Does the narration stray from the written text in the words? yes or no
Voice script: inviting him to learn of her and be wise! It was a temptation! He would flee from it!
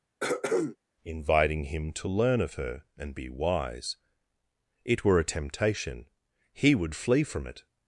yes